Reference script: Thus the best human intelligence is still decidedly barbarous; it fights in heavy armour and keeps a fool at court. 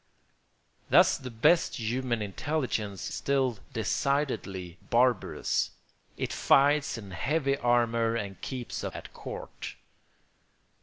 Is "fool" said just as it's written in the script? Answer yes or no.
no